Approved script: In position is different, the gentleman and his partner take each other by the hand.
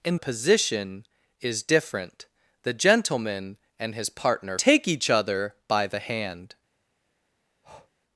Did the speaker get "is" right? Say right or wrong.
right